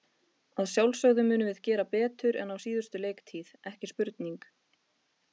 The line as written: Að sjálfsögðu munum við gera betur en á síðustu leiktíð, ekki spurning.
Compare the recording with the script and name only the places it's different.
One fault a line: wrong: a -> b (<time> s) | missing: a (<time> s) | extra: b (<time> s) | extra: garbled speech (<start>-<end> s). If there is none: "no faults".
no faults